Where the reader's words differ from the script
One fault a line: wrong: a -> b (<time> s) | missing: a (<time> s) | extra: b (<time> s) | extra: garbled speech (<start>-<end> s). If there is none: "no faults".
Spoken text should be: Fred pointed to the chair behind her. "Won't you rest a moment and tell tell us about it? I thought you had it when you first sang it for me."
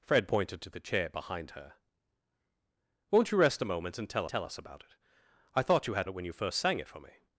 no faults